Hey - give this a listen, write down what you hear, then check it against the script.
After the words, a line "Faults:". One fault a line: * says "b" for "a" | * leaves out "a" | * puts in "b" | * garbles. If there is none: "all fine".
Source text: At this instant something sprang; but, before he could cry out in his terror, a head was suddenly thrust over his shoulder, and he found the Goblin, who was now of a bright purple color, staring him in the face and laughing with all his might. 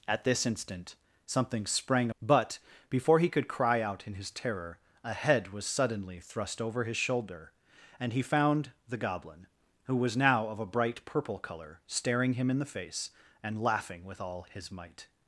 At this instant something sprang; but, before he could cry out in his terror, a head was suddenly thrust over his shoulder, and he found the Goblin, who was now of a bright purple color, staring him in the face and laughing with all his might.
Faults:
all fine